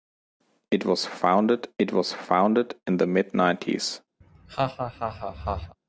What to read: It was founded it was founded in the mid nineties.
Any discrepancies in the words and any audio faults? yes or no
yes